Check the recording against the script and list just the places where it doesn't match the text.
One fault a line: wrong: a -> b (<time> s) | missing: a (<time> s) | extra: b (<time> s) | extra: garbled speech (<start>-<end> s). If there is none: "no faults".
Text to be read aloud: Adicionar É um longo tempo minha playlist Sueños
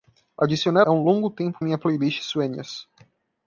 no faults